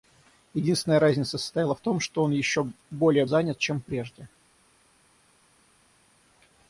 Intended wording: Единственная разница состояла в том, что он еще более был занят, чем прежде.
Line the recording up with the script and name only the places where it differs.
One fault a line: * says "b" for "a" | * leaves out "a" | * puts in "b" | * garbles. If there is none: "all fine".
* leaves out "был"